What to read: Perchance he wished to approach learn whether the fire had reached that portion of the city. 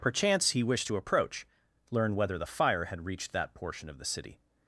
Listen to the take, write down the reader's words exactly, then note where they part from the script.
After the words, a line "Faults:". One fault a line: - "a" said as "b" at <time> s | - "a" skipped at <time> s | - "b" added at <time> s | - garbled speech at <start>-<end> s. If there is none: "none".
Perchance he wished to approach learn whether the fire had reached that portion of the city.
Faults:
none